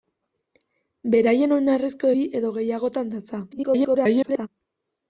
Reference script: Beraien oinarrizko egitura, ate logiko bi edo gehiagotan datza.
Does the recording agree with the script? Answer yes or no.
no